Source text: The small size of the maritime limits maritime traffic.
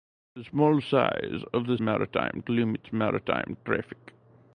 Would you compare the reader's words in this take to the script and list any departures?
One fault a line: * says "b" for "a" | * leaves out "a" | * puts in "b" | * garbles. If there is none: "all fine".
all fine